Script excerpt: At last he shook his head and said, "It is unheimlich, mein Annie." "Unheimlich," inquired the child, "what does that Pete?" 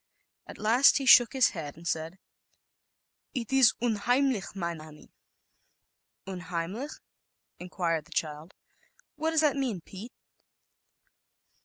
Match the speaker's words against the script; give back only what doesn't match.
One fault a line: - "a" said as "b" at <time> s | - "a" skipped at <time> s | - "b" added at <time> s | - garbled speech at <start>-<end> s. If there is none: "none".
- "mean" added at 9.6 s